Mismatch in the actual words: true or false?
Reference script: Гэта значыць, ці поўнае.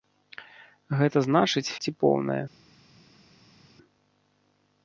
false